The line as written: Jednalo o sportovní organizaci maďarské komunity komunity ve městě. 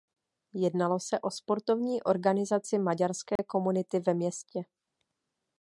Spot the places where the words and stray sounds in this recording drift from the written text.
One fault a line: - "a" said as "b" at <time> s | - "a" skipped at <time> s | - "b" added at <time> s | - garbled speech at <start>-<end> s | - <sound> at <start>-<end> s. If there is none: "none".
- "se" added at 1.0 s
- dropout at 3.4-3.4 s
- "komunity" skipped at 4.0 s